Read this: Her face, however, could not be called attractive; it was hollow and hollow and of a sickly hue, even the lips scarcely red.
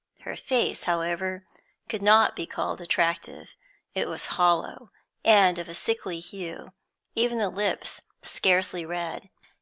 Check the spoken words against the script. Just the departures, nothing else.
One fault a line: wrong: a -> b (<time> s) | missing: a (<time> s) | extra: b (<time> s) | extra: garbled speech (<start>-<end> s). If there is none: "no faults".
missing: hollow and (5.6 s)